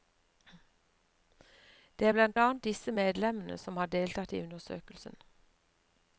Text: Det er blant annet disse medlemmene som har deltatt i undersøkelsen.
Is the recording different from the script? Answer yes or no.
no